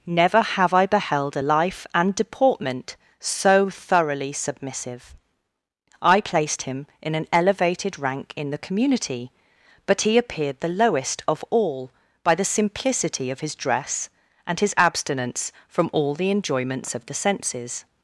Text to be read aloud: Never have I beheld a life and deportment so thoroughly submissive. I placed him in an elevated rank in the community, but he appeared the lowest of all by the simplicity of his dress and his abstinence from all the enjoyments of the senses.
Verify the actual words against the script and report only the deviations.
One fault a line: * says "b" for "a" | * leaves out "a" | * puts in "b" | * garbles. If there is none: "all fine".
all fine